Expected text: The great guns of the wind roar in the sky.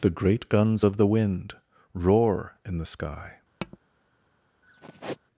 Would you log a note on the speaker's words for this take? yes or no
no